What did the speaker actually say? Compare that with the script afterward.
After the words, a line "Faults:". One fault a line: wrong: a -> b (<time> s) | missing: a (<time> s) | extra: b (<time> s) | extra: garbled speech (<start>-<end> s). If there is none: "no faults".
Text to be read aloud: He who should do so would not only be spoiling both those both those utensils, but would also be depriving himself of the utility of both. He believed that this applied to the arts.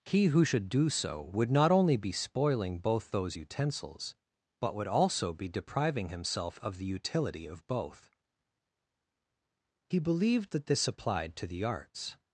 He who should do so would not only be spoiling both those utensils, but would also be depriving himself of the utility of both. He believed that this applied to the arts.
Faults:
missing: both those (3.4 s)